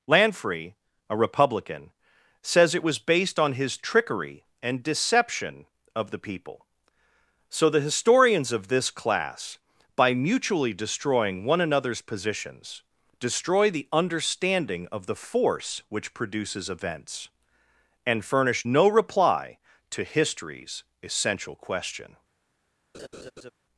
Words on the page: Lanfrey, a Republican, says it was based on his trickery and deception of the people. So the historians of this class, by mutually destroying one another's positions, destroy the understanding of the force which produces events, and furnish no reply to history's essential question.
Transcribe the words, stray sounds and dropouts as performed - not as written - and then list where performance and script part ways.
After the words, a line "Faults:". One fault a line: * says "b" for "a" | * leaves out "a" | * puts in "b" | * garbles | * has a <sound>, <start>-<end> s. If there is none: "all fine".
Lanfrey, a Republican, says it was based on his trickery and deception of the people. So the historians of this class, by mutually destroying one another's positions, destroy the understanding of the force which produces events, and furnish no reply to history's essential question.
Faults:
* has a laugh, 22.9-23.5 s